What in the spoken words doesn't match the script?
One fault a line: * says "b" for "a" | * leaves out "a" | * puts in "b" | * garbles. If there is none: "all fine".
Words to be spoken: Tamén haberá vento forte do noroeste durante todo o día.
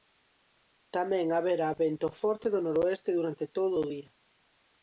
all fine